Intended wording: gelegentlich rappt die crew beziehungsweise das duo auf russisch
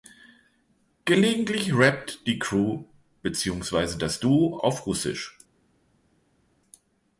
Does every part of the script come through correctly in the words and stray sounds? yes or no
yes